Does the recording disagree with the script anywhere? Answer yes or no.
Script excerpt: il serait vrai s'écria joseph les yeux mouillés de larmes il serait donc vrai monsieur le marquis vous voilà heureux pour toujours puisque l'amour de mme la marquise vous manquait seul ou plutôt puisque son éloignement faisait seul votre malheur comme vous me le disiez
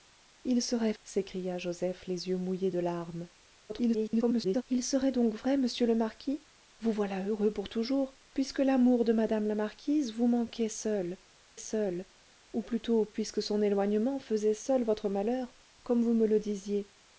yes